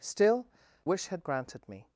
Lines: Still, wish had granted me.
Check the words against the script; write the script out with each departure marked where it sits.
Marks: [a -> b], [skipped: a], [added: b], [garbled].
Still, wish had granted me.